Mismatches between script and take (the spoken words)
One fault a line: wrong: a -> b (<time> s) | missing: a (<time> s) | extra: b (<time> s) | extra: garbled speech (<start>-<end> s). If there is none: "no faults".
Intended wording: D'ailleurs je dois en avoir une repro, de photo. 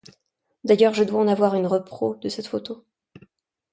extra: cette (2.3 s)